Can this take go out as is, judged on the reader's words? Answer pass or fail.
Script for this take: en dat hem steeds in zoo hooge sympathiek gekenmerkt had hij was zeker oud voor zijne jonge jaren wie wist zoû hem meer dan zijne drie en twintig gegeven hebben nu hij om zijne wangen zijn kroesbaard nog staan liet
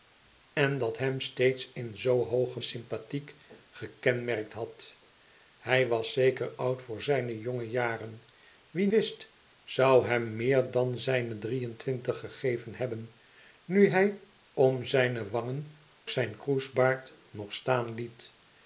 pass